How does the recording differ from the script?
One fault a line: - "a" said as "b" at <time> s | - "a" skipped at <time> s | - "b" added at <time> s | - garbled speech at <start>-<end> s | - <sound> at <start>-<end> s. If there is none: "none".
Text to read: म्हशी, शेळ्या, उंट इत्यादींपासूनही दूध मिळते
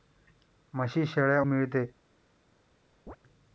- "उंट इत्यादींपासूनही दूध" skipped at 1.4 s
- chirp at 3.1-3.2 s